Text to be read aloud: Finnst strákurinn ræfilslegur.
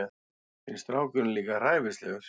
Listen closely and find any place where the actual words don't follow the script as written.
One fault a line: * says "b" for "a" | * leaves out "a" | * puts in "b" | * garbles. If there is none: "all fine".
* puts in "líka"